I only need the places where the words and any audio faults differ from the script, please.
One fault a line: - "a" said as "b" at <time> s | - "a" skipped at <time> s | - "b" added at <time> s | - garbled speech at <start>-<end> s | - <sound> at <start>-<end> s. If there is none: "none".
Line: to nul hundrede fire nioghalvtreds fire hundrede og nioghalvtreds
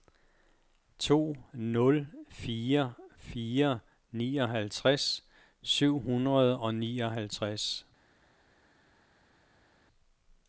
- "hundrede" said as "fire" at 2.3 s
- "fire" said as "syv" at 5.6 s